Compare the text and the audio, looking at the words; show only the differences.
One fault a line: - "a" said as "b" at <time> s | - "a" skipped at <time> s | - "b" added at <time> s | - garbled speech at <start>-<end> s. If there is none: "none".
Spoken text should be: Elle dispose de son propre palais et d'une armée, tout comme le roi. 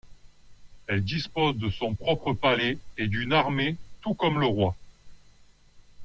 none